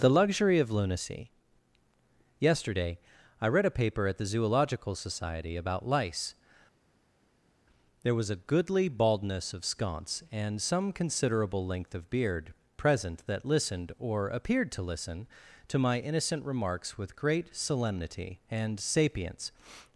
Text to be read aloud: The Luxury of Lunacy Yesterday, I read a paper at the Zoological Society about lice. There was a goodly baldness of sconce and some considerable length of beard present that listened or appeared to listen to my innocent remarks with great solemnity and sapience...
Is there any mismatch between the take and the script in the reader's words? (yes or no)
no